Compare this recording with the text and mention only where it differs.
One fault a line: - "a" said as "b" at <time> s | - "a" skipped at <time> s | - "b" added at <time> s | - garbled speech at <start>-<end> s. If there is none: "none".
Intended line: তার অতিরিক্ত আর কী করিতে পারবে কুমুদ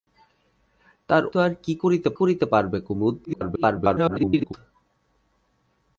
- "অতিরিক্ত" skipped at 1.2 s
- "করিতে" added at 2.2 s
- garbled speech at 3.2-4.5 s